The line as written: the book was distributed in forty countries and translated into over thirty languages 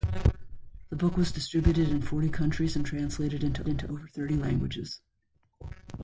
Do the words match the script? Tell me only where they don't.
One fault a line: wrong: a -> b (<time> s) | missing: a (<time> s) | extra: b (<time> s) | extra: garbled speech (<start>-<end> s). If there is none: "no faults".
extra: into (3.7 s)